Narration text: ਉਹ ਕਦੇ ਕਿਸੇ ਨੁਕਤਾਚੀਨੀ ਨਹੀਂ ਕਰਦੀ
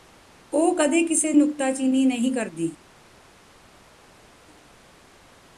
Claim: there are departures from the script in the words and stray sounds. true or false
false